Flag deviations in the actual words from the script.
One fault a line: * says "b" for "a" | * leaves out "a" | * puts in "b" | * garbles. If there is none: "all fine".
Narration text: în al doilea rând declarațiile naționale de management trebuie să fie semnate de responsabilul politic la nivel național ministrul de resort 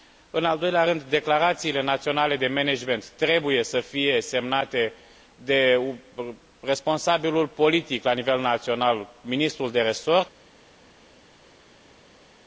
all fine